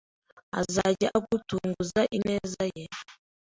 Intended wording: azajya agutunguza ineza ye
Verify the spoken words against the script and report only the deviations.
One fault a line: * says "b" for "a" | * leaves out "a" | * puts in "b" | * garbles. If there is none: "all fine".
all fine